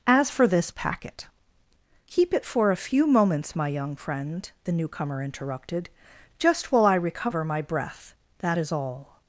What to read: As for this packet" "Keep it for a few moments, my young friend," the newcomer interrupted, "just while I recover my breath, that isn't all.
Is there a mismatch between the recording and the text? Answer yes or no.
yes